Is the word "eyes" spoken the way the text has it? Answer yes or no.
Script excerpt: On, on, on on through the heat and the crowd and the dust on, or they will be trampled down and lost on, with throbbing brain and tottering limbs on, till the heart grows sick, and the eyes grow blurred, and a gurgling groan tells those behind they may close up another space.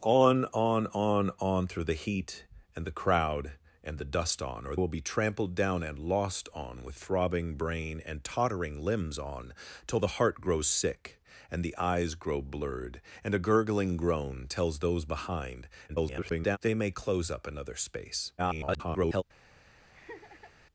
yes